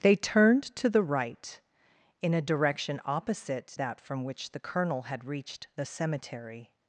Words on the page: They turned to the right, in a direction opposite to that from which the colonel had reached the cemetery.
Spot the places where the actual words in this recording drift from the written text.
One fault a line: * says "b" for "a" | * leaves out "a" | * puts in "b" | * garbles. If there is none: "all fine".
* leaves out "to"